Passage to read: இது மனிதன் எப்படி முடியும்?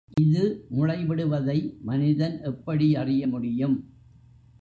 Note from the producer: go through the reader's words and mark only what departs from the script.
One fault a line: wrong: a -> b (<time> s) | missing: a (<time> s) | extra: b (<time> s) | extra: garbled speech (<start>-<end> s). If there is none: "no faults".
extra: முளைவிடுவதை (0.7 s)
extra: அறிய (3.0 s)